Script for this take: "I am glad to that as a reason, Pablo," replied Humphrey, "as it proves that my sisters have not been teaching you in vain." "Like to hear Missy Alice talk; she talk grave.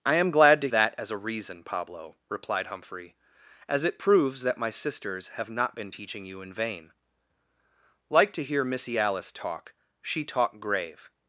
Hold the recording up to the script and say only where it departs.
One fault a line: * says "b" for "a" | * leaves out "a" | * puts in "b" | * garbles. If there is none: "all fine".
all fine